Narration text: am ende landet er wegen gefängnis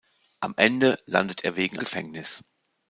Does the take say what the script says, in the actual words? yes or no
yes